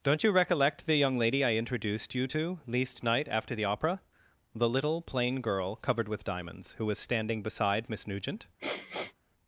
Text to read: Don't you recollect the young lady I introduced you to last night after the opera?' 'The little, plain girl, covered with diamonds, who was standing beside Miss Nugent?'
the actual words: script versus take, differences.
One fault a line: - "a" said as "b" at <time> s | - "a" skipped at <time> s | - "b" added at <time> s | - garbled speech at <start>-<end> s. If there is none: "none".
- "last" said as "least" at 2.7 s